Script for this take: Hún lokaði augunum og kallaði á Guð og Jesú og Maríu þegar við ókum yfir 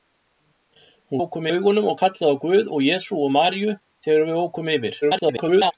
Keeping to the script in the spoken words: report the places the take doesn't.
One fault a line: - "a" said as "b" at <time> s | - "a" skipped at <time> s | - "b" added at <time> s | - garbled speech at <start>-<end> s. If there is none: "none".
- "lokaði" said as "ókum" at 1.2 s
- garbled speech at 5.0-5.7 s